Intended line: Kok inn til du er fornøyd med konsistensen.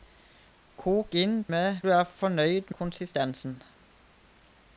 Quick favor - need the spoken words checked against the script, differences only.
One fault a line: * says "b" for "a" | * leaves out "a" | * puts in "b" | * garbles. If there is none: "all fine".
* says "med" for "til"
* leaves out "med"